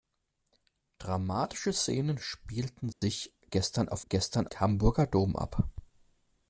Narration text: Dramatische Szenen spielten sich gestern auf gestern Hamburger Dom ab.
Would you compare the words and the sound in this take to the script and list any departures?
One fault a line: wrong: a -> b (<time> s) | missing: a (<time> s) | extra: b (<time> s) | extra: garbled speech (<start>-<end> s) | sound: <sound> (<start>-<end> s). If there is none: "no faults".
sound: dropout (2.9-3.0 s)